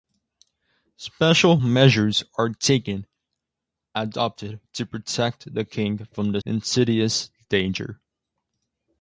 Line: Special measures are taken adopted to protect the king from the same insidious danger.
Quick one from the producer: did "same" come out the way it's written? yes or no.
no